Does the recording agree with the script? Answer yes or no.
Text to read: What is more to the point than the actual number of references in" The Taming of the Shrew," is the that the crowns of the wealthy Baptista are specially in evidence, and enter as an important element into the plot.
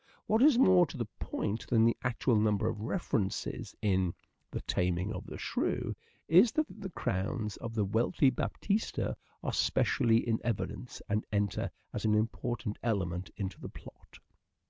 yes